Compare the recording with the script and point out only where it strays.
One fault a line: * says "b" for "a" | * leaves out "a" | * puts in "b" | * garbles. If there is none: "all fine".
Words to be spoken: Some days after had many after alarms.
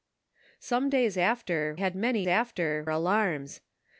all fine